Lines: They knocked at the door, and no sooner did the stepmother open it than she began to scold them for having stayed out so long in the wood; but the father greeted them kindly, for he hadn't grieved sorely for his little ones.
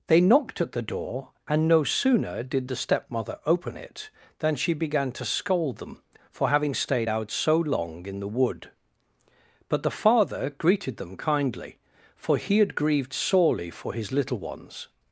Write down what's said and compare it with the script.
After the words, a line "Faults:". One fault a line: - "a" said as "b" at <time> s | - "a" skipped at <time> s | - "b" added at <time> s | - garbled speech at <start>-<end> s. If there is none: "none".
They knocked at the door, and no sooner did the stepmother open it than she began to scold them for having stayed out so long in the wood; but the father greeted them kindly, for he had grieved sorely for his little ones.
Faults:
- "hadn't" said as "had" at 12.6 s